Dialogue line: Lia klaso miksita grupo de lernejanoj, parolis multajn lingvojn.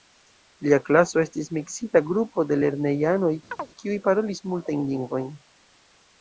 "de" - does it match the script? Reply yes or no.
yes